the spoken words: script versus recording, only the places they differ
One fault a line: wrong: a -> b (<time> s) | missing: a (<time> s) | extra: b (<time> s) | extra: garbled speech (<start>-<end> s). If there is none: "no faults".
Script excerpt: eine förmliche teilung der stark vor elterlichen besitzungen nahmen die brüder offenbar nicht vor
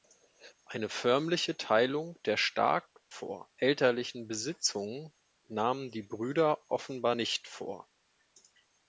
no faults